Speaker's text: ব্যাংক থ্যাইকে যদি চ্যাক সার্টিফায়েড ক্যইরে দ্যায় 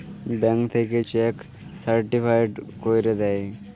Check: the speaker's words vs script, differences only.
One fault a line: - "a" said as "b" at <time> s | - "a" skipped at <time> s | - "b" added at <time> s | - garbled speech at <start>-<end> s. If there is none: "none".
- "যদি" skipped at 1.0 s